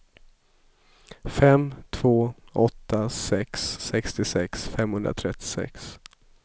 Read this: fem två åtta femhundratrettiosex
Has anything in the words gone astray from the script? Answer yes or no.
yes